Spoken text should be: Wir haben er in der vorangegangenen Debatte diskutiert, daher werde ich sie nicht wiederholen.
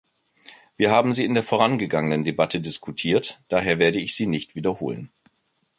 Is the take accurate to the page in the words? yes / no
no